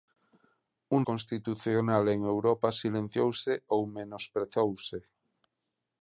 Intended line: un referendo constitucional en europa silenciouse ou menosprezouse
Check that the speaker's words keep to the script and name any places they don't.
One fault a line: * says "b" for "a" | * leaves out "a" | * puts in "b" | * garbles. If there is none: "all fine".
* leaves out "referendo"